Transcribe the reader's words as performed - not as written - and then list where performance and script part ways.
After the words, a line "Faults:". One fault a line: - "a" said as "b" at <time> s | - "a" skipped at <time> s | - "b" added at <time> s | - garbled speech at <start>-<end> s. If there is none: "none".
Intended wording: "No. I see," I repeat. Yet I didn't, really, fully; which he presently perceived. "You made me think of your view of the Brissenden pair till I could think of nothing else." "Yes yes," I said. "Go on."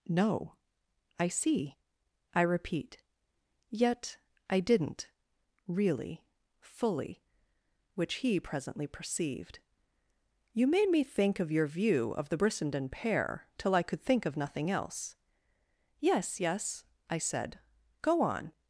"No. I see," I repeat. Yet I didn't, really, fully; which he presently perceived. "You made me think of your view of the Brissenden pair till I could think of nothing else." "Yes yes," I said. "Go on."
Faults:
none